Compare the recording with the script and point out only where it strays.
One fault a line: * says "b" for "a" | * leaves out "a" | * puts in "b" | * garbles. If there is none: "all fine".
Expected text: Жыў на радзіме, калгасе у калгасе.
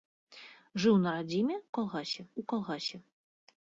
all fine